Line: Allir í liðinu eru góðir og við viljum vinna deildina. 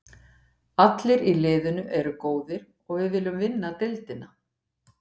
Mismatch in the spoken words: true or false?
false